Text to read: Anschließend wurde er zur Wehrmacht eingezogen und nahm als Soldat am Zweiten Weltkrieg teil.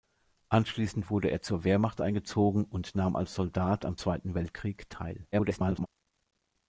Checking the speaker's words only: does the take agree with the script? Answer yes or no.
no